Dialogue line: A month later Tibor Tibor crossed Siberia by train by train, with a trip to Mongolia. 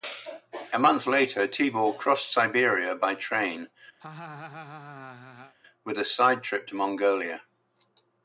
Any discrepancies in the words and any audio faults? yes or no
yes